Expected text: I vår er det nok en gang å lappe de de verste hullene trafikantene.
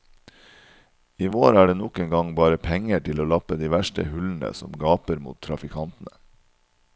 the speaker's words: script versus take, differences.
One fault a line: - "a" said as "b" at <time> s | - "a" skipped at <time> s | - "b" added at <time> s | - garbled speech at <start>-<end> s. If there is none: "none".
- "bare penger til" added at 2.4 s
- "de" skipped at 3.7 s
- "som gaper mot" added at 4.6 s